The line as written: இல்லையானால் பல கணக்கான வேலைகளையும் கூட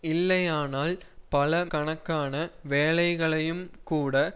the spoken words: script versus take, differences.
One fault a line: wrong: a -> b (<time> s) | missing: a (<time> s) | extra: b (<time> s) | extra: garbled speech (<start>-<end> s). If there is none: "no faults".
no faults